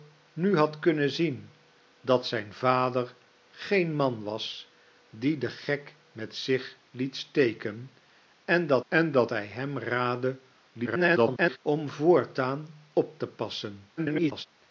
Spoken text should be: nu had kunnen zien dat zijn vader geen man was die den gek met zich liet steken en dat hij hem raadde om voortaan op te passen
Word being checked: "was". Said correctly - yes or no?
yes